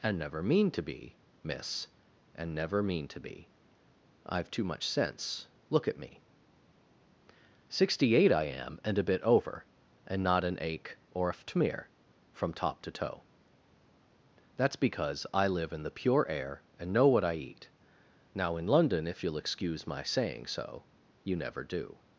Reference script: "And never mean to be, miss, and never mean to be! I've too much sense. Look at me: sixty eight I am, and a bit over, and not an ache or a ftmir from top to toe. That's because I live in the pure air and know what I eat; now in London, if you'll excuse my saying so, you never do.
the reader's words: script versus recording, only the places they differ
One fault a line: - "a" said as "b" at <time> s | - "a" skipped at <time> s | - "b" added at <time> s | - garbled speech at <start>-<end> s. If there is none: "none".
none